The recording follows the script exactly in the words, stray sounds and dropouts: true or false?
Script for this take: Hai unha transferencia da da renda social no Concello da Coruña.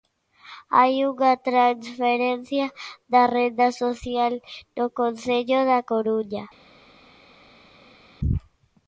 false